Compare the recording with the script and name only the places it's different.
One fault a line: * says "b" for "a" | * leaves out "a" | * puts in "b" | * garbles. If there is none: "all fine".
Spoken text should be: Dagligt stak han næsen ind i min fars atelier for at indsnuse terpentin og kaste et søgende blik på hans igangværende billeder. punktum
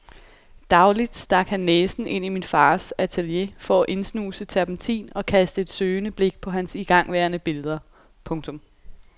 all fine